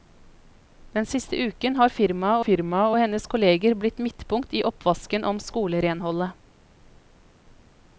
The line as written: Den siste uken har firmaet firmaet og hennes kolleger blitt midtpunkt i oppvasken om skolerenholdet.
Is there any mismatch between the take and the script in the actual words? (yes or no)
no